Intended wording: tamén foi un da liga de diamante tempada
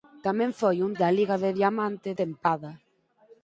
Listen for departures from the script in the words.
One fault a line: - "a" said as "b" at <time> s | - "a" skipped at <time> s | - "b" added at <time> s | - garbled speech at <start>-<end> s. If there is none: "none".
none